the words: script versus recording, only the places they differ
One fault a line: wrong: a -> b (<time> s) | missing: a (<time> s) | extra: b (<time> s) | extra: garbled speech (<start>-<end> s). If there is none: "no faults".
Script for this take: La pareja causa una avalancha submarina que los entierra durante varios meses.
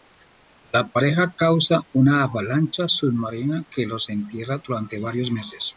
no faults